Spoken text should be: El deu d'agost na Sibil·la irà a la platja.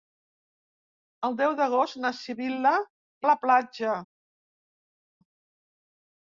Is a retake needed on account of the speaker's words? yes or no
yes